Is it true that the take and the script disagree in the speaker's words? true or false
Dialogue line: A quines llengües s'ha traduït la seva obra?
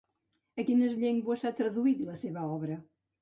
false